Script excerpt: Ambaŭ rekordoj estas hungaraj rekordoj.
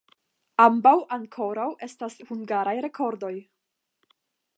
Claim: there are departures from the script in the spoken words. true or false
true